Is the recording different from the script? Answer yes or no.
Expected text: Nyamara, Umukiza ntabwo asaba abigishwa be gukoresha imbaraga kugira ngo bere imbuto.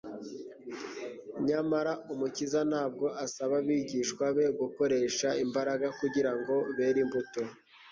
no